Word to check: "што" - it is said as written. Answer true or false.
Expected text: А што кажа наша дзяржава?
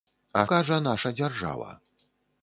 false